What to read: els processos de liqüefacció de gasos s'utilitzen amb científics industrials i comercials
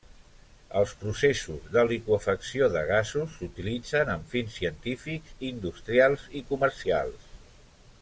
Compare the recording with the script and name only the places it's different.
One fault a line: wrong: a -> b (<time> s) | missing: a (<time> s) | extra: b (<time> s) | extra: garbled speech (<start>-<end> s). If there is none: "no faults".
extra: fins (4.3 s)